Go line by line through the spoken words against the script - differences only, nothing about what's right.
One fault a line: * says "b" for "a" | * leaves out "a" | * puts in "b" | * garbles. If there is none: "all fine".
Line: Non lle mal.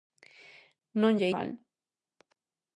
all fine